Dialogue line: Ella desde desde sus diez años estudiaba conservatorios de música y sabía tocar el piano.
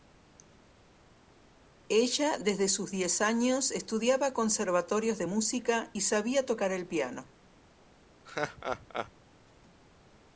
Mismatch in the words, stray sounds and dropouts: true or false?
true